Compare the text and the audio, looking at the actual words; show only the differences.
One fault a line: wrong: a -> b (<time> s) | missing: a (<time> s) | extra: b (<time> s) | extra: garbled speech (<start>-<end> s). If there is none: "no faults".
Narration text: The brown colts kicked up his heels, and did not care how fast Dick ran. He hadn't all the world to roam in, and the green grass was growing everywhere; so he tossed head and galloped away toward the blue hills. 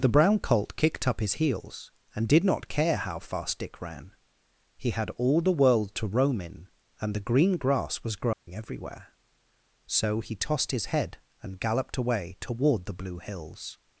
wrong: colts -> colt (0.4 s)
wrong: hadn't -> had (4.9 s)
extra: his (10.7 s)